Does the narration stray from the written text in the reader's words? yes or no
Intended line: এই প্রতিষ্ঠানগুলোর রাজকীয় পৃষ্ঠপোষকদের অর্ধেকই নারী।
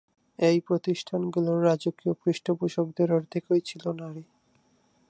yes